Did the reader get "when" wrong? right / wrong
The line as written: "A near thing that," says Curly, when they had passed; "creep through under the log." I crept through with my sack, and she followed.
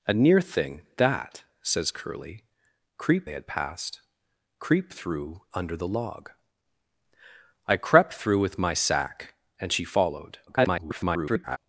wrong